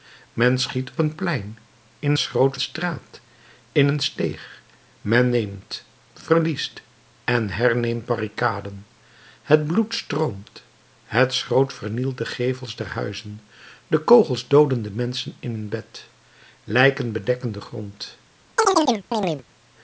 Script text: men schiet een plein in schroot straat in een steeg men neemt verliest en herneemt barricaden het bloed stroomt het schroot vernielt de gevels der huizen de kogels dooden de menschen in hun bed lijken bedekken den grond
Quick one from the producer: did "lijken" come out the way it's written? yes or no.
yes